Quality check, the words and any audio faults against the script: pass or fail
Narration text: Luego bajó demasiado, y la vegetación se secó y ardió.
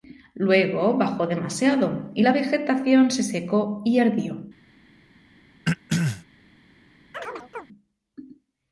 fail